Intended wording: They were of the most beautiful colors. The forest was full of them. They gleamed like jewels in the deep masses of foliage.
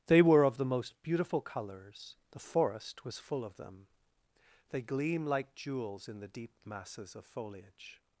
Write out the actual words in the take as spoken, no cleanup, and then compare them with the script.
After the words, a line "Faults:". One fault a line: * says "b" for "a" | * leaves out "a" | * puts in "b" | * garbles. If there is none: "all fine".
They were of the most beautiful colors. The forest was full of them. They gleam like jewels in the deep masses of foliage.
Faults:
* says "gleam" for "gleamed"